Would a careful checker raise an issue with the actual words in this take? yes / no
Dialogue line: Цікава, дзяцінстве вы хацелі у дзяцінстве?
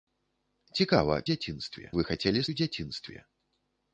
no